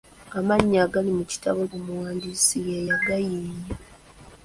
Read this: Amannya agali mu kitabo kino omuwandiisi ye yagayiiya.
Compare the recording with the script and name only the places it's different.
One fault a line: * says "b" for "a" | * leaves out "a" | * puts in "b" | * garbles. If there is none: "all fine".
* leaves out "kino"